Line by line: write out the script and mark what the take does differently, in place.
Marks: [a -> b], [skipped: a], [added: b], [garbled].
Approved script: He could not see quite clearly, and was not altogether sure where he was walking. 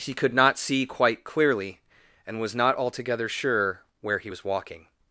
He could not see quite clearly, and was not altogether sure where he was walking.